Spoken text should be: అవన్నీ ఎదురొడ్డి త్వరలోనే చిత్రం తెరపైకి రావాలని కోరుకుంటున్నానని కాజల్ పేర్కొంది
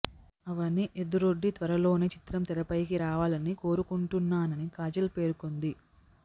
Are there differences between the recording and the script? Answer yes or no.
no